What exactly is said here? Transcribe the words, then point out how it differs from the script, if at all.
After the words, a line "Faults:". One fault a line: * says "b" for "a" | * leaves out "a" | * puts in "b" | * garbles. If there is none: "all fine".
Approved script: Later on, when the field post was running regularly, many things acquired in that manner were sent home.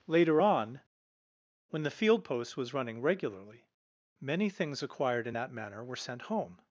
Later on, when the field post was running regularly, many things acquired in that manner were sent home.
Faults:
all fine